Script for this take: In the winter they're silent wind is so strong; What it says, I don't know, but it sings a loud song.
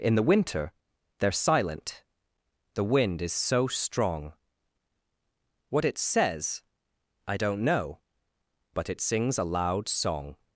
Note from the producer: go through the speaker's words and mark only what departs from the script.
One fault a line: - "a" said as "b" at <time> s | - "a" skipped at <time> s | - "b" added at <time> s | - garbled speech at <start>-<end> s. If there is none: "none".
- "the" added at 2.7 s